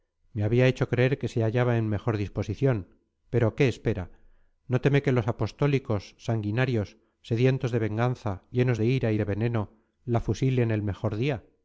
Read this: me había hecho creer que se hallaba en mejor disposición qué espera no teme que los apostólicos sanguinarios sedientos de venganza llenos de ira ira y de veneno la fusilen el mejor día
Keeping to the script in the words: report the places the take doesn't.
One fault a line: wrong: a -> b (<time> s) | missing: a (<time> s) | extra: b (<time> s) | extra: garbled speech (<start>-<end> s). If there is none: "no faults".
extra: pero (3.3 s)
missing: ira (9.1 s)